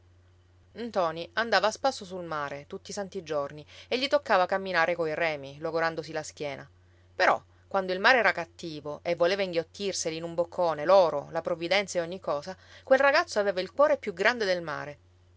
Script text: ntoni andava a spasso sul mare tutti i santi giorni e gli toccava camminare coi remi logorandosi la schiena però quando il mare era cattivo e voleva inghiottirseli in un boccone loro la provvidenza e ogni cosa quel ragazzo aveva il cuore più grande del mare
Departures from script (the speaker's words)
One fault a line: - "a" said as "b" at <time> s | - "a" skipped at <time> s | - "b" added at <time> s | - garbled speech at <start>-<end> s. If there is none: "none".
none